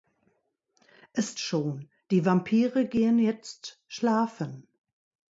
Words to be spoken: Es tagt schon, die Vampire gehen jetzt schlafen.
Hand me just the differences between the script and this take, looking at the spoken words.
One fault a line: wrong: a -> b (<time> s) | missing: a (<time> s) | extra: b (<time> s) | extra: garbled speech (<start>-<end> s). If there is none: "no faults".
missing: tagt (1.4 s)